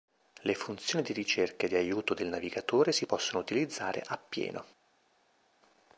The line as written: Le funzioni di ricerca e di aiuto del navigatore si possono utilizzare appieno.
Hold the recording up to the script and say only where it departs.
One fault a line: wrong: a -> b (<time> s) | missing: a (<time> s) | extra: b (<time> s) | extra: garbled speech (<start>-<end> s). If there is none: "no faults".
no faults